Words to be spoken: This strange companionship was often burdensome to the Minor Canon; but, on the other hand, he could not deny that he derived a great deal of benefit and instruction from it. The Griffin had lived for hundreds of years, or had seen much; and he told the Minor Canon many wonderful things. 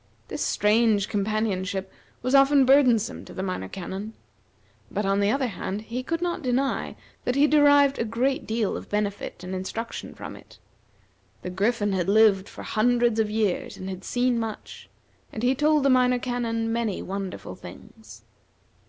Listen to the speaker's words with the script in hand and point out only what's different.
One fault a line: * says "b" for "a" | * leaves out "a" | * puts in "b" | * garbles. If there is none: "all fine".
* says "and" for "or"